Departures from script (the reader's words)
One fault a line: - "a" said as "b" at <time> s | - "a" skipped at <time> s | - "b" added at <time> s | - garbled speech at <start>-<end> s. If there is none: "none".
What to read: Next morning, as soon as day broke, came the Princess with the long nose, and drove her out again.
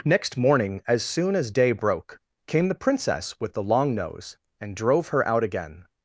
none